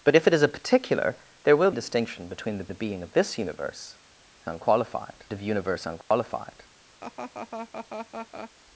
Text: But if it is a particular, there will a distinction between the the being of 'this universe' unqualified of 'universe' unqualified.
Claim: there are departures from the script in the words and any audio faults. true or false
true